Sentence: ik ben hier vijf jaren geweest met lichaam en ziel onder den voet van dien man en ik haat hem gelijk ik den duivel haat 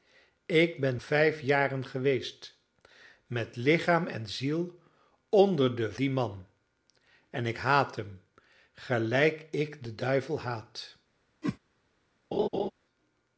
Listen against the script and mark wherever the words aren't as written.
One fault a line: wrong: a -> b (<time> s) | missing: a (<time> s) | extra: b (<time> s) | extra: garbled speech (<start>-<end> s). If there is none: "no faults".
missing: hier (1.0 s)
missing: voet van (5.9 s)